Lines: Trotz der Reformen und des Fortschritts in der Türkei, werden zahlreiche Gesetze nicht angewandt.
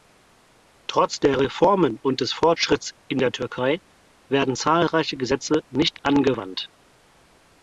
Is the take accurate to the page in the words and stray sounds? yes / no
yes